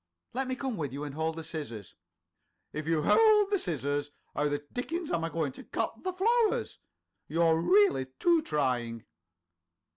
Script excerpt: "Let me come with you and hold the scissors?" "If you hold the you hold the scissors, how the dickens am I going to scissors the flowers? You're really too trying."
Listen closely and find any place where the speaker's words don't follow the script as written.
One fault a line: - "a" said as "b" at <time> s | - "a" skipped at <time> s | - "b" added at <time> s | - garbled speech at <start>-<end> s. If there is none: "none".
- "you hold the" skipped at 3.6 s
- "scissors" said as "cut" at 5.7 s